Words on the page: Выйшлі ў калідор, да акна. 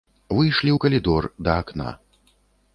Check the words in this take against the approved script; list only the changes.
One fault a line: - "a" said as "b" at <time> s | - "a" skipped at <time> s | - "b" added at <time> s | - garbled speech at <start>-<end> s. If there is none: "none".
none